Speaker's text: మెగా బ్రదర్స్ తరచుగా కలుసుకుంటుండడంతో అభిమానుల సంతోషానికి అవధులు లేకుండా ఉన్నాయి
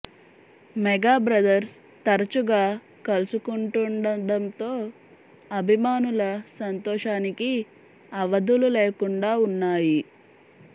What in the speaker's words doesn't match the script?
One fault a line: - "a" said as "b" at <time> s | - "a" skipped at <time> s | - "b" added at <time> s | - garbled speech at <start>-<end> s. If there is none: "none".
none